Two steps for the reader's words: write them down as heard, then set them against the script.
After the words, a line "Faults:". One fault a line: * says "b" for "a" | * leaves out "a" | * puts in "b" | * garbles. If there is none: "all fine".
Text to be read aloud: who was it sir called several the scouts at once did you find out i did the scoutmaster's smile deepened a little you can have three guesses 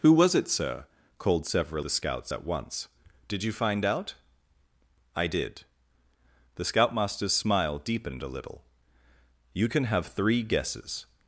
who was it sir called several the scouts at once did you find out i did the scoutmaster's smile deepened a little you can have three guesses
Faults:
all fine